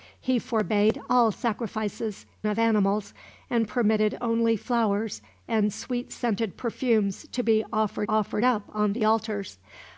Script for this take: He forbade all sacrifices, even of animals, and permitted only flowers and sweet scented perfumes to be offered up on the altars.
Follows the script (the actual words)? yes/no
no